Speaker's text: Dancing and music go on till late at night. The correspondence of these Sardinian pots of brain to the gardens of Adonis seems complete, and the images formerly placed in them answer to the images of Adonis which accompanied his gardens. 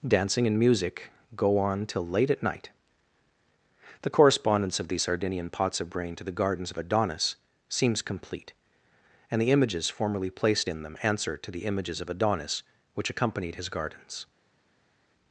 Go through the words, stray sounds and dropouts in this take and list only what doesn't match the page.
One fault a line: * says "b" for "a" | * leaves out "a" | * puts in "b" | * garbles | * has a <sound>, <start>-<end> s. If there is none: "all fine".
all fine